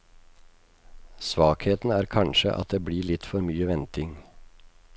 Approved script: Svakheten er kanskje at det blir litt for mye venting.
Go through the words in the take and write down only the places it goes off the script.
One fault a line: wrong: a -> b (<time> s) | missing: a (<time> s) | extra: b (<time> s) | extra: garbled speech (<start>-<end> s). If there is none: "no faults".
no faults